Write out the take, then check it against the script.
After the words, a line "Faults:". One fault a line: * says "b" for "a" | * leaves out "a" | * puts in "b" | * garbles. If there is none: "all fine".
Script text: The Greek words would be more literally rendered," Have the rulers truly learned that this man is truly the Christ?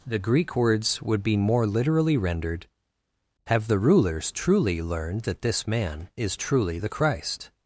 The Greek words would be more literally rendered," Have the rulers truly learned that this man is truly the Christ?
Faults:
all fine